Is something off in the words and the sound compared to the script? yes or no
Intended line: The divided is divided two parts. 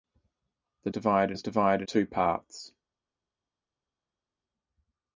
no